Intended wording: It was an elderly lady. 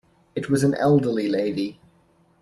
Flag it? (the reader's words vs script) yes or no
no